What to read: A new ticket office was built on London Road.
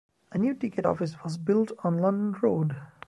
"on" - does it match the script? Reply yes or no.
yes